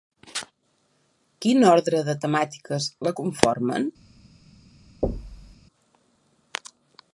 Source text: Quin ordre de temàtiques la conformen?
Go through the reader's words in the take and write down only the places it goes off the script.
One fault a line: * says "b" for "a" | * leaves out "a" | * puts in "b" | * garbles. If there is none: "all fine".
all fine